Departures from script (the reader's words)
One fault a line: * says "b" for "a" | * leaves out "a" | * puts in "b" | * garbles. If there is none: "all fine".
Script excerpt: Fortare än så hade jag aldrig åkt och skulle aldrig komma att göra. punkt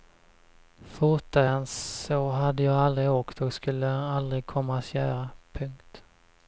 all fine